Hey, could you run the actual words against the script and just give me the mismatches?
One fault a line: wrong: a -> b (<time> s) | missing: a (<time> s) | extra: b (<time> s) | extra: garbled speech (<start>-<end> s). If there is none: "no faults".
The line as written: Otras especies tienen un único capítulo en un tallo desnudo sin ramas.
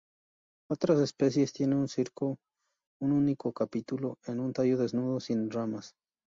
no faults